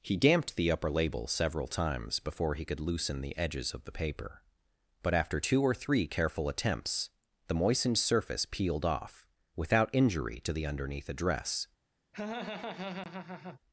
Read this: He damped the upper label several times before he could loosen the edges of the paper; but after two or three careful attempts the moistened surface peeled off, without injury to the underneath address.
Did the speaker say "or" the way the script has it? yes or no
yes